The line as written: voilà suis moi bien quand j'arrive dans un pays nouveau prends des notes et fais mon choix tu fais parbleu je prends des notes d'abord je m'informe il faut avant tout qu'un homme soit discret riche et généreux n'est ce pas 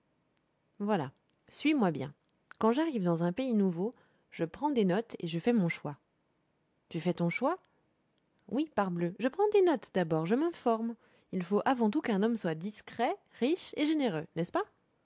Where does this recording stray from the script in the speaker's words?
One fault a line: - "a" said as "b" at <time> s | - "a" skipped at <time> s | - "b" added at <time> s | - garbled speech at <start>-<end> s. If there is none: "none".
- "je" added at 4.3 s
- "je" added at 5.3 s
- "ton choix oui" added at 7.1 s